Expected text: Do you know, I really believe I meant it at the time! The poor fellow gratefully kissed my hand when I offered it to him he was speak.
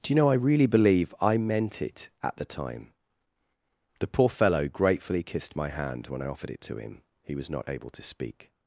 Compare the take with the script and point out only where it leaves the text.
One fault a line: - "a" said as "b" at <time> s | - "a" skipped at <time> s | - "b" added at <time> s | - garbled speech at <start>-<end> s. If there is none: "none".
- "not able to" added at 7.5 s